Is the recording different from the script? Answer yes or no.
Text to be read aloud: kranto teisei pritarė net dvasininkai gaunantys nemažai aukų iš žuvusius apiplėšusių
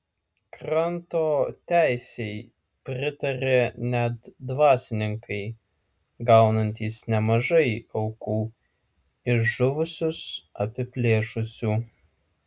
no